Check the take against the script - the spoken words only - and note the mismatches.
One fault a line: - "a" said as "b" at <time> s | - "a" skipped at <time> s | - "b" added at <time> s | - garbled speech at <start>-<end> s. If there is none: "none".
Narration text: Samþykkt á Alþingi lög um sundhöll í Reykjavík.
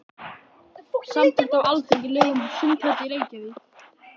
none